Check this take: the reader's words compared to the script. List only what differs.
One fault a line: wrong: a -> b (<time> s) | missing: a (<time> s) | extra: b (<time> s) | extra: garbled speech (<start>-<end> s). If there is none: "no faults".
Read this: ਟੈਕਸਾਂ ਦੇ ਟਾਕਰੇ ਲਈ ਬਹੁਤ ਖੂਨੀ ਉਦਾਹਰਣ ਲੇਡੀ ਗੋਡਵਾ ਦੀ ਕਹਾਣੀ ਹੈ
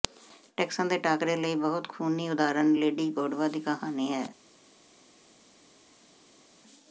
no faults